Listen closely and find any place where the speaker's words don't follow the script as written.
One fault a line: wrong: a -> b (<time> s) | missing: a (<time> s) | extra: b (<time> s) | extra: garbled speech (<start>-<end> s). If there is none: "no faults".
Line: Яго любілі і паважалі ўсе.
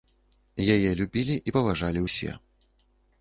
wrong: Яго -> Яе (0.8 s)